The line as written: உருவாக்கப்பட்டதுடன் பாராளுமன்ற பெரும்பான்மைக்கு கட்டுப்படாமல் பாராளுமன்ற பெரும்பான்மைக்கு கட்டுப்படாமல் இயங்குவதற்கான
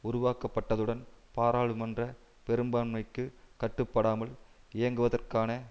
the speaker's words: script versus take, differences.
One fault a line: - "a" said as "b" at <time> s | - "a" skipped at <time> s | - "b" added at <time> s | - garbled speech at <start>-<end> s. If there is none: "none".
- "பாராளுமன்ற பெரும்பான்மைக்கு கட்டுப்படாமல்" skipped at 4.3 s